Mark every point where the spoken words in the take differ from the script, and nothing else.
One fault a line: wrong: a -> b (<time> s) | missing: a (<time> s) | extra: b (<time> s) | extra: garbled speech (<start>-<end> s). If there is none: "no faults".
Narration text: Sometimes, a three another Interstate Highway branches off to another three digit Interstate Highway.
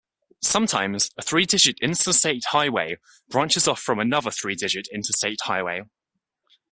wrong: another -> digit (1.4 s)
wrong: to -> from (3.8 s)